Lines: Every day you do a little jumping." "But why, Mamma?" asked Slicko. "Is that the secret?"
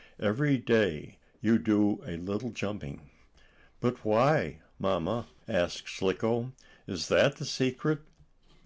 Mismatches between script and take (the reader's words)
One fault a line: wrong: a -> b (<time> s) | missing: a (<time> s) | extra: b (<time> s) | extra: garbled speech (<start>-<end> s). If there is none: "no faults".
no faults